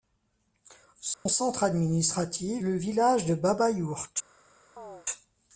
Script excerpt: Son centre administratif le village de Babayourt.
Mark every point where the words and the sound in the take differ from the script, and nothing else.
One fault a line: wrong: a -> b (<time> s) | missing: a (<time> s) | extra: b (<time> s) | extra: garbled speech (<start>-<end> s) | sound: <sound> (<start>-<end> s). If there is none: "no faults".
sound: dropout (1.1-1.3 s)
sound: chirp (4.8-5.1 s)